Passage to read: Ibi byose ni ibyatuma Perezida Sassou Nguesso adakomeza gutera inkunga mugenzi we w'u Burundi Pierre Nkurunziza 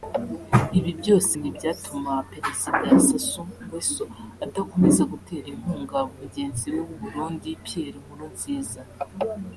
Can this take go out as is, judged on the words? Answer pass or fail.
pass